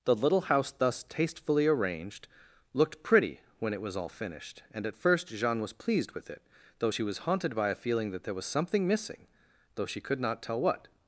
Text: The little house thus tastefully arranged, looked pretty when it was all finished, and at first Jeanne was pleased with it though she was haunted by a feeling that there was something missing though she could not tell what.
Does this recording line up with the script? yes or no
yes